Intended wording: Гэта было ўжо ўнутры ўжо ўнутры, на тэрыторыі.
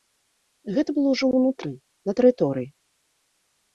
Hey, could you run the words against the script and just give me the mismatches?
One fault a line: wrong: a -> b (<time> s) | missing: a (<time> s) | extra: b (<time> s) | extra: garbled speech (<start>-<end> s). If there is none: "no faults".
missing: ўжо ўнутры (1.7 s)